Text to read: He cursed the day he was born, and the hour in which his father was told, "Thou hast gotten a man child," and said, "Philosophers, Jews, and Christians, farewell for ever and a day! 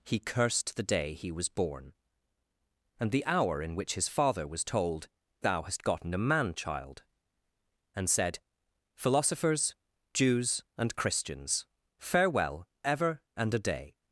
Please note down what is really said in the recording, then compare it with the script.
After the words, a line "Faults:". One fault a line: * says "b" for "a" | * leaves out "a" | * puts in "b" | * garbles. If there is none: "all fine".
He cursed the day he was born, and the hour in which his father was told, "Thou hast gotten a man child," and said, "Philosophers, Jews, and Christians, farewell ever and a day!
Faults:
* leaves out "for"